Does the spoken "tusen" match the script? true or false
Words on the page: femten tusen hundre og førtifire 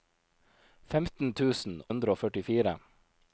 true